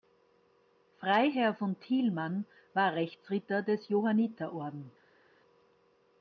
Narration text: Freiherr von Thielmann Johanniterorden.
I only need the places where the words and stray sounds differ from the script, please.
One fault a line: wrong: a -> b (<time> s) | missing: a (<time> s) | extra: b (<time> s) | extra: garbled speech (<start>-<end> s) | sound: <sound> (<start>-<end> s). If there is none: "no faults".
extra: war Rechtsritter des (2.7 s)